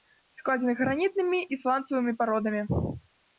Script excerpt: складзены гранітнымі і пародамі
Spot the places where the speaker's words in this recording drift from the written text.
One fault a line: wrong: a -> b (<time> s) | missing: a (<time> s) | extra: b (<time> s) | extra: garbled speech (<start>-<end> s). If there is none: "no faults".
extra: сланцавымі (1.6 s)